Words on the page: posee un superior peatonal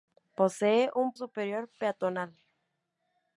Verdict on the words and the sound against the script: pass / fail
pass